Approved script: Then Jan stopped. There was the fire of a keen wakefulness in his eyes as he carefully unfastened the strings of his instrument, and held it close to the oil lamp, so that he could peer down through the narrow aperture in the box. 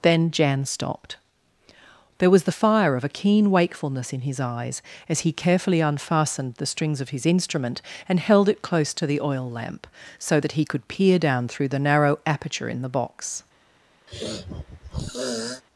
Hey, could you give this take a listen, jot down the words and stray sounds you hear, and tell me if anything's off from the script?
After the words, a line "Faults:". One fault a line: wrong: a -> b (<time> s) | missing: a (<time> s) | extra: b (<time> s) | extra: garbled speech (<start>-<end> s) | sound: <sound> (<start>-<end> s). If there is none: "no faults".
Then Jan stopped. There was the fire of a keen wakefulness in his eyes as he carefully unfastened the strings of his instrument, and held it close to the oil lamp, so that he could peer down through the narrow aperture in the box.
Faults:
sound: sniff (14.1-15.6 s)